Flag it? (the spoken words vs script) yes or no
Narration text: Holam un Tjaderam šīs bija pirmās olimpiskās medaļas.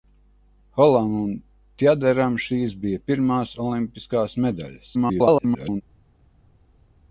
yes